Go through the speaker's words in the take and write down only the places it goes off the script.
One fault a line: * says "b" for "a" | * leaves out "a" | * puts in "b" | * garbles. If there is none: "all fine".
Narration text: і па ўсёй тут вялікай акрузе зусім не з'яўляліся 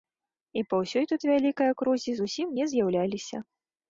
all fine